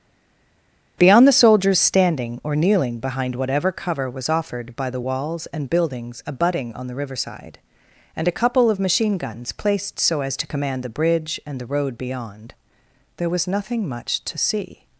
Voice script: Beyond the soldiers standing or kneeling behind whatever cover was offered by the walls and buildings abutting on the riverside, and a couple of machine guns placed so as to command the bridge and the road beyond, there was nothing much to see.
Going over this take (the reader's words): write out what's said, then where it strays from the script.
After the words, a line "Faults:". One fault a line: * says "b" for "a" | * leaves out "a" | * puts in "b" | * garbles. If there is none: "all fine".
Beyond the soldiers standing or kneeling behind whatever cover was offered by the walls and buildings abutting on the riverside, and a couple of machine guns placed so as to command the bridge and the road beyond, there was nothing much to see.
Faults:
all fine